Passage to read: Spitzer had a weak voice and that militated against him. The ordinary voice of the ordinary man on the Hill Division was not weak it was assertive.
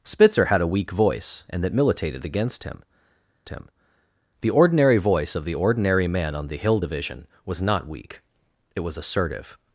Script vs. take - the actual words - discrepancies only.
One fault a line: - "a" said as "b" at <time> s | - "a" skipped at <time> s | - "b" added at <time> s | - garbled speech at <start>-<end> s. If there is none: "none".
- "him" added at 3.5 s